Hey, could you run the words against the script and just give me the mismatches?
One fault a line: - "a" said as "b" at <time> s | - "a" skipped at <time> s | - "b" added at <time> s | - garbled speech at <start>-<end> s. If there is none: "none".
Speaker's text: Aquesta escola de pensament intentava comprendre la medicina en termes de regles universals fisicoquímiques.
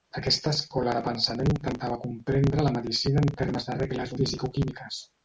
- "universals" skipped at 4.2 s